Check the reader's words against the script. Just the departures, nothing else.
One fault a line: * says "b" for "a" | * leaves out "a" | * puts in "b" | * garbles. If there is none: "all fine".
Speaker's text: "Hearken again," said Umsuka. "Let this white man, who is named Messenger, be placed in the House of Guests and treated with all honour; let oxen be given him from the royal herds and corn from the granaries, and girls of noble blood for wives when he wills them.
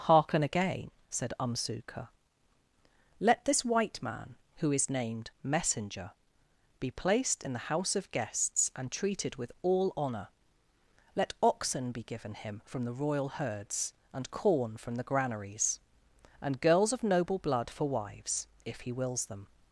* says "if" for "when"